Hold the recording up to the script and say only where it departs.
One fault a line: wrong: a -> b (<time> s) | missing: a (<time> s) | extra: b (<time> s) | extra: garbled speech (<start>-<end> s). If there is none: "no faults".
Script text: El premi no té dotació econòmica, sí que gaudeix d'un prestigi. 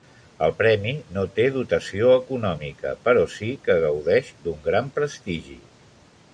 extra: però (3.1 s)
extra: gran (4.7 s)